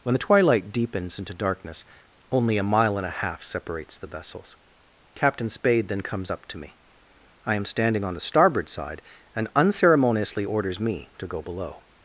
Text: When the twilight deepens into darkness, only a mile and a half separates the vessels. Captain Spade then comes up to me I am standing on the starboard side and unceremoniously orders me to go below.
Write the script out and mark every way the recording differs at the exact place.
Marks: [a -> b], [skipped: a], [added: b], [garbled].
When the twilight deepens into darkness, only a mile and a half separates the vessels. Captain Spade then comes up to me I am standing on the starboard side and unceremoniously orders me to go below.